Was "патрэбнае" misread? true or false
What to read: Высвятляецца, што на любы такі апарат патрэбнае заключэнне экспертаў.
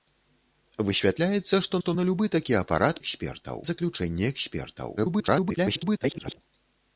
true